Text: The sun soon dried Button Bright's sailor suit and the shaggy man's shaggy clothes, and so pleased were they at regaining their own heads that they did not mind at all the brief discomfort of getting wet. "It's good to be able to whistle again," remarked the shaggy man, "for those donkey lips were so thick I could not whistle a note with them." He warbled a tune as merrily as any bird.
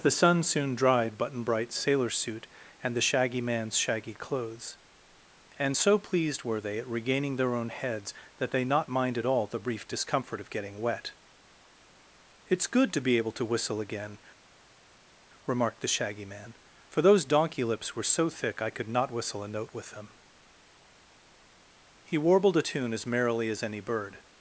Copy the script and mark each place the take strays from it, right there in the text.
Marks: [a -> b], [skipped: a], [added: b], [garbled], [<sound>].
The sun soon dried Button Bright's sailor suit and the shaggy man's shaggy clothes, and so pleased were they at regaining their own heads that they [skipped: did] not mind at all the brief discomfort of getting wet. "It's good to be able to whistle again," remarked the shaggy man, "for those donkey lips were so thick I could not whistle a note with them." He warbled a tune as merrily as any bird.